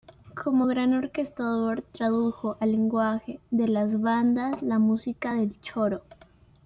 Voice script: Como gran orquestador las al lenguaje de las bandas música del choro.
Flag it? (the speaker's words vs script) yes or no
yes